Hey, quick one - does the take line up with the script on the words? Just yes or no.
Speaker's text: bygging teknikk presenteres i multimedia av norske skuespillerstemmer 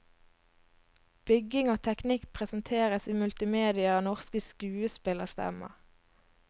no